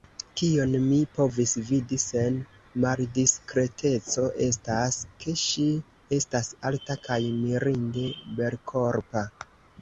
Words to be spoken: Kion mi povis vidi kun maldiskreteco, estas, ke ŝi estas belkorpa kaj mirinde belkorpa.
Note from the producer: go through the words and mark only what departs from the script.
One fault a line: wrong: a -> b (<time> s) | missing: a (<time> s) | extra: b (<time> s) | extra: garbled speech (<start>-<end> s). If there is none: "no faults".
wrong: kun -> sen (2.0 s)
wrong: belkorpa -> alta (6.7 s)